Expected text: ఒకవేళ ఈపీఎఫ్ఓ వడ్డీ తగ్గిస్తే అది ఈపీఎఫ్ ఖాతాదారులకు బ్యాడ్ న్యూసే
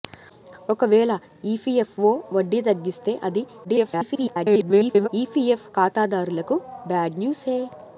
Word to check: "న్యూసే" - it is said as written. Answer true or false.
true